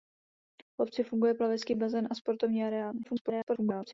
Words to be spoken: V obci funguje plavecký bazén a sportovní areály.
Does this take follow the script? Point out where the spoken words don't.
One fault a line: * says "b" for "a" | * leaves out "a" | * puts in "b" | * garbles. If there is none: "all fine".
* garbles